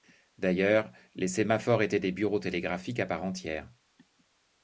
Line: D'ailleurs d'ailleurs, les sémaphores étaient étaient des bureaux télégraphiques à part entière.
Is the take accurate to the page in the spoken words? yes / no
no